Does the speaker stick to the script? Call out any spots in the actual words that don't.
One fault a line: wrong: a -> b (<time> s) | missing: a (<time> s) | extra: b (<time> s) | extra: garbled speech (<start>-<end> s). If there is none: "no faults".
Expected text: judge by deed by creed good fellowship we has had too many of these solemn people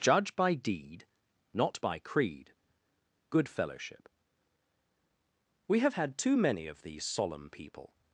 extra: not (1.5 s)
wrong: has -> have (5.8 s)